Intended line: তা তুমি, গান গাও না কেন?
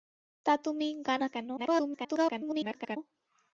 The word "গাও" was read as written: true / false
false